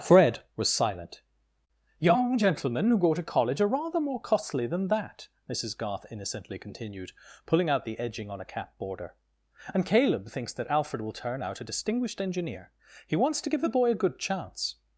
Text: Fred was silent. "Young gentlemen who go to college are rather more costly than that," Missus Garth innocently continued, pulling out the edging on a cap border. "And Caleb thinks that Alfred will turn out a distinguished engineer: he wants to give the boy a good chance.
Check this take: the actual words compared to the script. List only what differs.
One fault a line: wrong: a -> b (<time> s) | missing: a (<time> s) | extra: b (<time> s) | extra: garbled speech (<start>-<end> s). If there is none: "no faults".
no faults